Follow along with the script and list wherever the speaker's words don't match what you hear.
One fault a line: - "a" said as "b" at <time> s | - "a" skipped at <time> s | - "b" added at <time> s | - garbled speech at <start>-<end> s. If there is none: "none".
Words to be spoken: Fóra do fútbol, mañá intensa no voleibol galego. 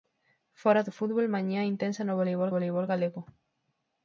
- "voleibol" added at 2.5 s